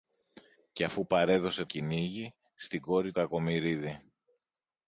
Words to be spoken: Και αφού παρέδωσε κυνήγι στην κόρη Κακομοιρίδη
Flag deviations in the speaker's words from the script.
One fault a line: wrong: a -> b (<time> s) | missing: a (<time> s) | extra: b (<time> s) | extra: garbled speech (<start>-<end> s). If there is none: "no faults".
no faults